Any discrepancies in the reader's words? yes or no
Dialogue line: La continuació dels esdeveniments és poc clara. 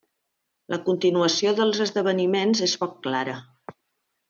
no